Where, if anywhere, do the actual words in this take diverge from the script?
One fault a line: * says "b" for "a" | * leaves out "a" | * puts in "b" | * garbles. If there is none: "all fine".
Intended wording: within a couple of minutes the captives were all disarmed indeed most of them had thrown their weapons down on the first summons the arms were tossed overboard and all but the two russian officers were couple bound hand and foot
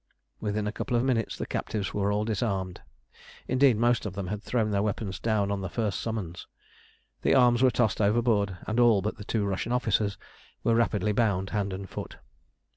* says "rapidly" for "couple"